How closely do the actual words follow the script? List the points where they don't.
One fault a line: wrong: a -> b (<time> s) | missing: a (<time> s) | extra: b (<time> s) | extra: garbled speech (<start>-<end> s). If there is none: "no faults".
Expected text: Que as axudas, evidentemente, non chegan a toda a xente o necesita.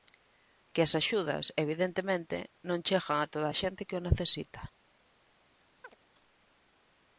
extra: que (3.9 s)